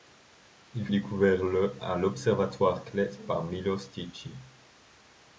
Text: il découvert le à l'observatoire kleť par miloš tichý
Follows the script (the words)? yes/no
yes